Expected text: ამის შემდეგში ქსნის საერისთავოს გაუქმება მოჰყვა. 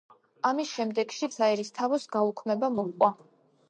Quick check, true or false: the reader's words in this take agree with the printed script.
false